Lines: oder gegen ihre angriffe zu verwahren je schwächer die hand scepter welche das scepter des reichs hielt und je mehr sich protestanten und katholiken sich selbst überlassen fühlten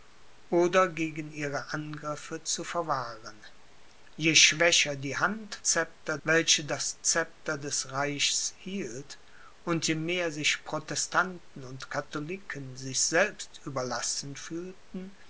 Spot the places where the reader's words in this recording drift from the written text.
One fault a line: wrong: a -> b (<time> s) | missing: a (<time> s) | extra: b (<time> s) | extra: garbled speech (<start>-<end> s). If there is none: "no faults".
no faults